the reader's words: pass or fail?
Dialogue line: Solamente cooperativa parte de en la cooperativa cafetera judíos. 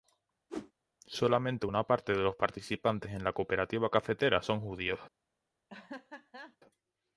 fail